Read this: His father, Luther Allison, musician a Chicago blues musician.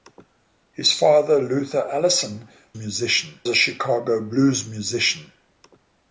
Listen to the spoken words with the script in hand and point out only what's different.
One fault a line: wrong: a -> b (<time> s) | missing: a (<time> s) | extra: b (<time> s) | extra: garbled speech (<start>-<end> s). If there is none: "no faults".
no faults